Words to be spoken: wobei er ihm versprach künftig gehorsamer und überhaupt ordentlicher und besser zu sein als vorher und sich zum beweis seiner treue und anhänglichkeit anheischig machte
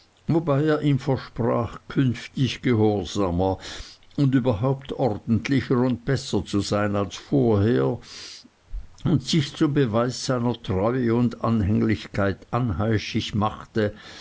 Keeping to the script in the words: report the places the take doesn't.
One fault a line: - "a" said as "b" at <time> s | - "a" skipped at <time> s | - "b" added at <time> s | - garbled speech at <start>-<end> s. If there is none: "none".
none